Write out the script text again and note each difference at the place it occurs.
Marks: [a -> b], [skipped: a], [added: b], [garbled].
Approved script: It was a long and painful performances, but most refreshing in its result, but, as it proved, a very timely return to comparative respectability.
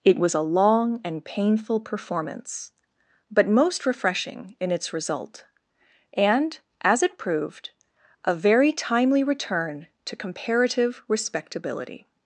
It was a long and painful [performances, -> performance] but most refreshing in its result, [but, -> and] as it proved, a very timely return to comparative respectability.